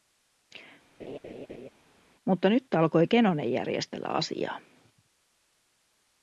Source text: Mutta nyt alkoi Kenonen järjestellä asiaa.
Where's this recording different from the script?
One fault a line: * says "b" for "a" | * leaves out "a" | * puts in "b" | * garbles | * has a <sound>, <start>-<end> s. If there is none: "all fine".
* has a laugh, 1.0-1.7 s